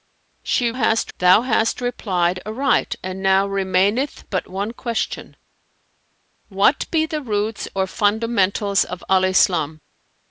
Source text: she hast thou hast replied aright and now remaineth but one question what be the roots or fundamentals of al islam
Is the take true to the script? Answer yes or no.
yes